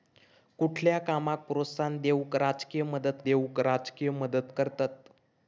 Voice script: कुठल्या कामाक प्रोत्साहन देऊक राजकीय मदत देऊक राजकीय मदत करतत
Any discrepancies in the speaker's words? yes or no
no